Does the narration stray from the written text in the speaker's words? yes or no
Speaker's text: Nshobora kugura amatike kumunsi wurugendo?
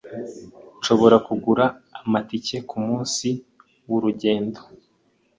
no